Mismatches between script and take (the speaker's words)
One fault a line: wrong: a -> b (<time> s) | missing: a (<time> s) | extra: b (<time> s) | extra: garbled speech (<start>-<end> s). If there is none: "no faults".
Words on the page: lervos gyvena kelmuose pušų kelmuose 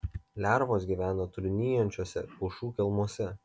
wrong: kelmuose -> trūnijančiuose (1.4 s)